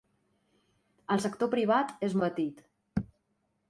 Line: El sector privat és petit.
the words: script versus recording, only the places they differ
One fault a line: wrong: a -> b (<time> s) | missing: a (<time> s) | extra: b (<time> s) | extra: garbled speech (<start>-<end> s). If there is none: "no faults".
no faults